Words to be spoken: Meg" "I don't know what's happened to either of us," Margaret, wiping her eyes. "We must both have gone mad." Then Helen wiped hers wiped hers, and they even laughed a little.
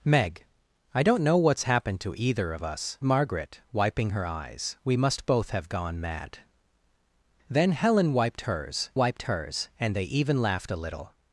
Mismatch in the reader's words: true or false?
false